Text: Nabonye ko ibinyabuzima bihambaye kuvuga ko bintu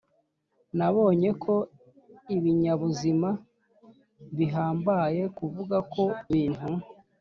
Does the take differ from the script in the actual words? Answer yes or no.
no